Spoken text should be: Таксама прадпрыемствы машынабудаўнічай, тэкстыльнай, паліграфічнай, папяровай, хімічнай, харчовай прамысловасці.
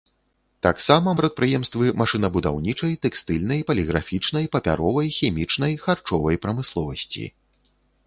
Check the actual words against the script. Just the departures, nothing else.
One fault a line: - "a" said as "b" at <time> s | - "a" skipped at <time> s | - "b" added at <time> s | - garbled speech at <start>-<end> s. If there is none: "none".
none